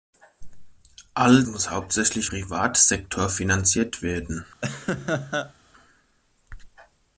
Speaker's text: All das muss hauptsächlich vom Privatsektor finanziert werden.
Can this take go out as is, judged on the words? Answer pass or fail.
fail